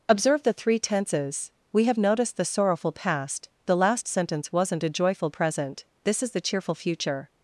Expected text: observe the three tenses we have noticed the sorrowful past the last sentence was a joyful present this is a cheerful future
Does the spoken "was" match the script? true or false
false